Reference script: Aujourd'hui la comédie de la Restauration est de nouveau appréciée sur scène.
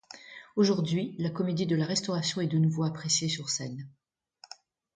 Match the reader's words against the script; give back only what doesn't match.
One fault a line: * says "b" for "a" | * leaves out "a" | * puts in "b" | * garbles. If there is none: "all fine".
all fine